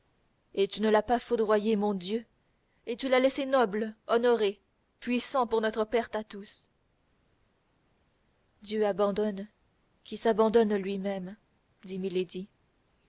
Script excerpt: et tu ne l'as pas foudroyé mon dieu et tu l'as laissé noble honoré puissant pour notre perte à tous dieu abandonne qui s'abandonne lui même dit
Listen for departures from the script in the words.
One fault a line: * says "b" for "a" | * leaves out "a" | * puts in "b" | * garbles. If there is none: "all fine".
all fine